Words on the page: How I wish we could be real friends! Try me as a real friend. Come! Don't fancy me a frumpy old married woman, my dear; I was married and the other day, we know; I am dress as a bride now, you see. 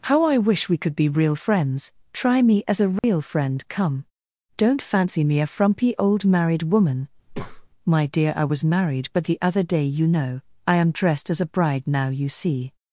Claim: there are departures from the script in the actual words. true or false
true